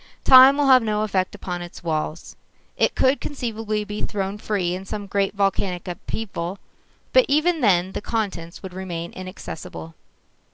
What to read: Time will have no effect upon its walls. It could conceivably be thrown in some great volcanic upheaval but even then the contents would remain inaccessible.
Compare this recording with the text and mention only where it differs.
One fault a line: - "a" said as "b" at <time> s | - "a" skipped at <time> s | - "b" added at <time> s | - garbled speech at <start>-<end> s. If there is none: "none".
- "free" added at 4.4 s